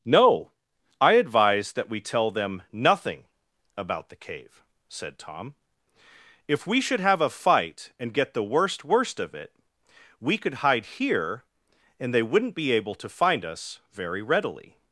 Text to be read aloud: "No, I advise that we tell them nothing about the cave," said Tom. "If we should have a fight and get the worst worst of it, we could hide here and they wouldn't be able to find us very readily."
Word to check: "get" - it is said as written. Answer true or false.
true